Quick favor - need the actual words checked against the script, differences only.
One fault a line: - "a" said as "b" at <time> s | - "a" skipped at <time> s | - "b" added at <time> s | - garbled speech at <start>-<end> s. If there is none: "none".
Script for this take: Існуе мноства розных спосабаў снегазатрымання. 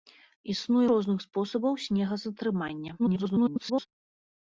- "мноства" skipped at 0.9 s
- garbled speech at 3.0-3.9 s